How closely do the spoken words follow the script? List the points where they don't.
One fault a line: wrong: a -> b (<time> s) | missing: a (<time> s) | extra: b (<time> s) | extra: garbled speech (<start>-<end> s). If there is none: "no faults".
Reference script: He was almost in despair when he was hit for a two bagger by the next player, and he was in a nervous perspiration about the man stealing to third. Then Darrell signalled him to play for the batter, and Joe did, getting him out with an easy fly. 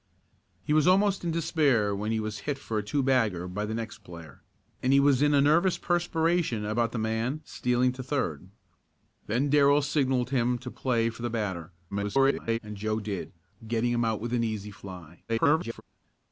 extra: garbled speech (11.9-12.6 s)
extra: garbled speech (15.3-15.8 s)